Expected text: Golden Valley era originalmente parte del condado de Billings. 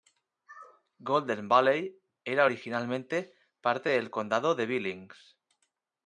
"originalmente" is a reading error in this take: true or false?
false